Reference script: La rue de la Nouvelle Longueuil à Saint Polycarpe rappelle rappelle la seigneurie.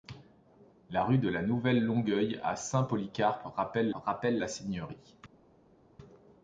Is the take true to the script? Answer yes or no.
yes